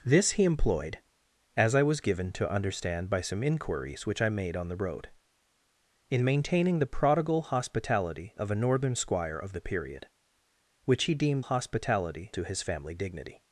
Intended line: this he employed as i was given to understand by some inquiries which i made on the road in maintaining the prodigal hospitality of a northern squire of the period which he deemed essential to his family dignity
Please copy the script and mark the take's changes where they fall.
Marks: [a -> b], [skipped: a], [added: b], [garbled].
this he employed as i was given to understand by some inquiries which i made on the road in maintaining the prodigal hospitality of a northern squire of the period which he deemed [essential -> hospitality] to his family dignity